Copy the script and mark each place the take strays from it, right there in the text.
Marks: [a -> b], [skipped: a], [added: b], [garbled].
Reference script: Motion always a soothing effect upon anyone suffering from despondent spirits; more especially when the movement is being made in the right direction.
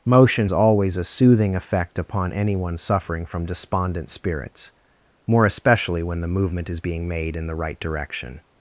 Motion always a soothing effect upon anyone suffering from despondent spirits; more especially when the movement is being made in the right direction.